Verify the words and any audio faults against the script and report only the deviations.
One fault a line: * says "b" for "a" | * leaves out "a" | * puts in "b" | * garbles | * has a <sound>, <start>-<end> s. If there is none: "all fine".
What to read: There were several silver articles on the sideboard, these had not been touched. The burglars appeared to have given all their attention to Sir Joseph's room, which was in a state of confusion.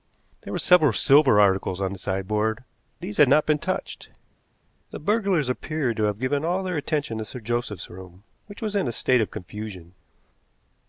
all fine